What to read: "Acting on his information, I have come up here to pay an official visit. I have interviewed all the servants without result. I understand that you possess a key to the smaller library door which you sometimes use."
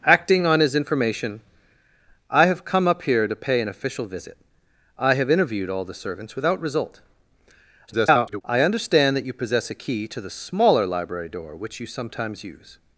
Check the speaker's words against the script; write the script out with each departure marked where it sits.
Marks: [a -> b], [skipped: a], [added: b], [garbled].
"Acting on his information, I have come up here to pay an official visit. I have interviewed all the servants without result. [garbled] I understand that you possess a key to the smaller library door which you sometimes use."